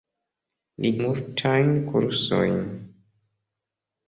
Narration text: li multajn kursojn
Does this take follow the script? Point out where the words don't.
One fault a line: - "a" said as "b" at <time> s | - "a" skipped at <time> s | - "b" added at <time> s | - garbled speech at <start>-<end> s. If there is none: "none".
none